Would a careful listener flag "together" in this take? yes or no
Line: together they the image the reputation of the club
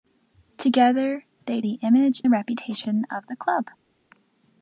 no